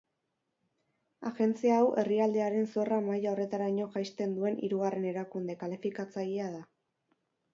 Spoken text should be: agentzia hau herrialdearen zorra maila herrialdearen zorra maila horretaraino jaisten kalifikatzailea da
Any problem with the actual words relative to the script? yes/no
yes